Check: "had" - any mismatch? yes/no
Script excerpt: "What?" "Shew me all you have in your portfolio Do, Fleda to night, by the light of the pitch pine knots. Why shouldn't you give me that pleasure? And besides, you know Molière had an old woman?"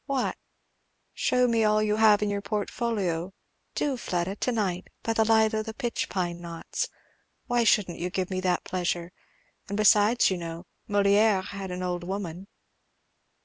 no